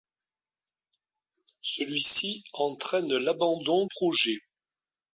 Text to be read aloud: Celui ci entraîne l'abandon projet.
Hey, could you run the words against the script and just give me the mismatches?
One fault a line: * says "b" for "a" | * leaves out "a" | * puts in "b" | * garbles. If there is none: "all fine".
all fine